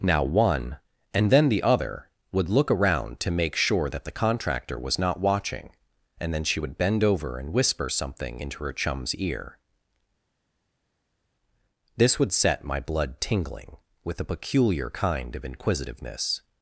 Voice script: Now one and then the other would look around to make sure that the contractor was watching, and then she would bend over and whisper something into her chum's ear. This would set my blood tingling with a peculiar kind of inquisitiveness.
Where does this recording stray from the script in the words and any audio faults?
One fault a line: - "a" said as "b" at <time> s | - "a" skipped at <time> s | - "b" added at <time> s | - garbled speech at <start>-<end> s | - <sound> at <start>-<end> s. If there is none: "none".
- "not" added at 5.0 s